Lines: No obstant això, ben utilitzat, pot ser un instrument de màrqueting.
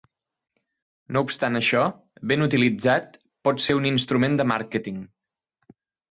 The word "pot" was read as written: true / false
true